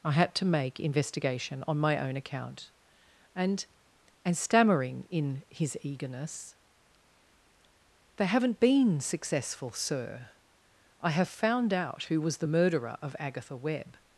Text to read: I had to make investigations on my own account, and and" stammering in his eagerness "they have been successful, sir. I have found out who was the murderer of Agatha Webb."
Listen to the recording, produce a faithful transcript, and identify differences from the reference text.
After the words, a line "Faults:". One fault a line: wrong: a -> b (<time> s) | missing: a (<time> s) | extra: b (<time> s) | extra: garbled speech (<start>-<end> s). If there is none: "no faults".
I had to make investigation on my own account, and and" stammering in his eagerness "they haven't been successful, sir. I have found out who was the murderer of Agatha Webb."
Faults:
wrong: investigations -> investigation (0.8 s)
wrong: have -> haven't (8.2 s)